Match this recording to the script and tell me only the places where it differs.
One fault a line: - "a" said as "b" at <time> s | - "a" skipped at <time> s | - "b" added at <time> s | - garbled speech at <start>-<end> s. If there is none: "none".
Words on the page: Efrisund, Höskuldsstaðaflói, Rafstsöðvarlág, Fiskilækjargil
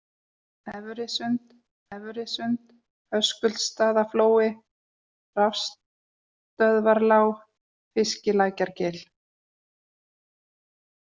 - "efrisund" added at 2.0 s